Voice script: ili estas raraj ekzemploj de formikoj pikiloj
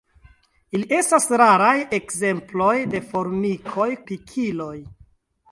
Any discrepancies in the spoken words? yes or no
no